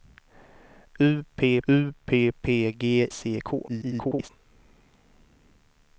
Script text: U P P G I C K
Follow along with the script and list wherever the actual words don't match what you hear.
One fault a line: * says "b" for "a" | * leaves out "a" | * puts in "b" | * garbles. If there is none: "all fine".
* puts in "u"
* puts in "P"
* leaves out "I"
* garbles